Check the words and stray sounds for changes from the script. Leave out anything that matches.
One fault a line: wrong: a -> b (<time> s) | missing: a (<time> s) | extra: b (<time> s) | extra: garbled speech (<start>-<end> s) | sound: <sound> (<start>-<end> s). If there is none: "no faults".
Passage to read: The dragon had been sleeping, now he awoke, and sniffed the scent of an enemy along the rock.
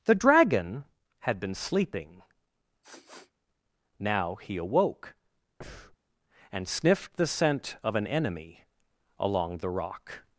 sound: sniff (2.8-3.3 s)
sound: breath (5.6-6.0 s)